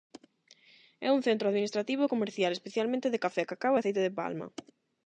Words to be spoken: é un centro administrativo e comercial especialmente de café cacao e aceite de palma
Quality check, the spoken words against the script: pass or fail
pass